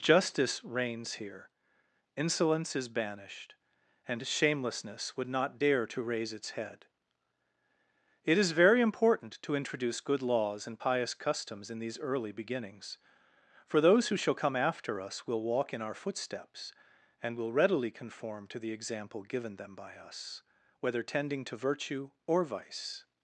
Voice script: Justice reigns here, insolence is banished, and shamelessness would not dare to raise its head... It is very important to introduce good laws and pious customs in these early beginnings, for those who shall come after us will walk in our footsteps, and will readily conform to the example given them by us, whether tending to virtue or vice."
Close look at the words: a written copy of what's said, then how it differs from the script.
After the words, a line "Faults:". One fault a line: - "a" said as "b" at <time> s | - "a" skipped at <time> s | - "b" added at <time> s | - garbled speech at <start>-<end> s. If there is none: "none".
Justice reigns here, insolence is banished, and shamelessness would not dare to raise its head... It is very important to introduce good laws and pious customs in these early beginnings, for those who shall come after us will walk in our footsteps, and will readily conform to the example given them by us, whether tending to virtue or vice."
Faults:
none